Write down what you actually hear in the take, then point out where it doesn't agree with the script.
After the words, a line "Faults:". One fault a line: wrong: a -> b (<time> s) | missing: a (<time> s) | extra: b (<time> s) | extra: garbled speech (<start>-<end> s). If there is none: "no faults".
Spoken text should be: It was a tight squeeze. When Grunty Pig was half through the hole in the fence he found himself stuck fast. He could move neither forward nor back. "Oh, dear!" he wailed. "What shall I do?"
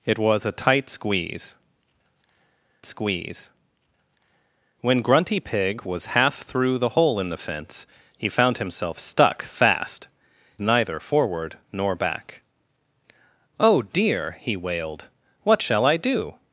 It was a tight squeeze squeeze. When Grunty Pig was half through the hole in the fence he found himself stuck fast. Neither forward nor back. "Oh, dear!" he wailed. "What shall I do?"
Faults:
extra: squeeze (2.9 s)
missing: He could move (10.1 s)